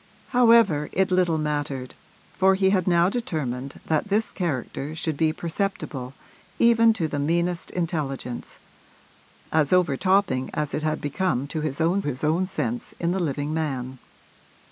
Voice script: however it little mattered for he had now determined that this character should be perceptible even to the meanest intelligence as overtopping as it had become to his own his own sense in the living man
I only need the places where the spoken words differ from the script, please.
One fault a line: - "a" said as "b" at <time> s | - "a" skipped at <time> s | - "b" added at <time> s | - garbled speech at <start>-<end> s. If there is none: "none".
none